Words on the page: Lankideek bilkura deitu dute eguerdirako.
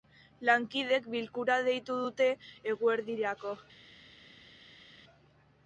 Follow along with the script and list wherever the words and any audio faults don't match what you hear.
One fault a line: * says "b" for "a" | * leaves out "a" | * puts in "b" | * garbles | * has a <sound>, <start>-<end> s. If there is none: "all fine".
all fine